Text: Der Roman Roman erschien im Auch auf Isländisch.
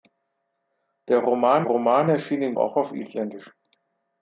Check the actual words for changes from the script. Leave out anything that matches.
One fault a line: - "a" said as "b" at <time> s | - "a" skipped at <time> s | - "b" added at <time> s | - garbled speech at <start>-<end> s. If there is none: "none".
none